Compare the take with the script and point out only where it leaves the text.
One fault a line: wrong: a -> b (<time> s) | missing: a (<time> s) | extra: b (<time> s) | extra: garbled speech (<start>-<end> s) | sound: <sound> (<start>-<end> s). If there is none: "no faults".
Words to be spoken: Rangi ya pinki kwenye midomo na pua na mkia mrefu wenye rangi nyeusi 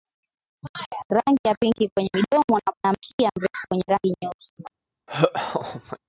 missing: pua (2.7 s)
sound: laugh (5.1-6.0 s)